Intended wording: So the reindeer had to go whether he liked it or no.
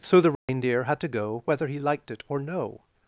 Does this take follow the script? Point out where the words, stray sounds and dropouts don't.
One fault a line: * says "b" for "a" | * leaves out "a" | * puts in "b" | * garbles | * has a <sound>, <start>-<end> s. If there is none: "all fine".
* has a dropout, 0.3-0.5 s